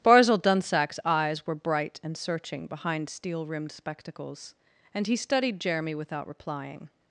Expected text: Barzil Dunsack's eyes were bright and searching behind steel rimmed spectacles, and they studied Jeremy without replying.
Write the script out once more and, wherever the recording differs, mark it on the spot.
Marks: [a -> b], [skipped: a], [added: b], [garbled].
Barzil Dunsack's eyes were bright and searching behind steel rimmed spectacles, and [they -> he] studied Jeremy without replying.